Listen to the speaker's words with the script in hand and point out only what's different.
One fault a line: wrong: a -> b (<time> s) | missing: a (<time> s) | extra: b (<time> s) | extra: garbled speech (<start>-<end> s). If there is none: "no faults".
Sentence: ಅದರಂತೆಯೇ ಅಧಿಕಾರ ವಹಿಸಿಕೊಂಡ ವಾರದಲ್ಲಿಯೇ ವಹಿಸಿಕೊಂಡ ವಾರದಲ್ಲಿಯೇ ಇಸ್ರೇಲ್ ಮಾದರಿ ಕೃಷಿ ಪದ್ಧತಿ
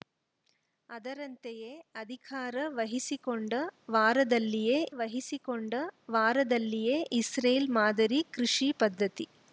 no faults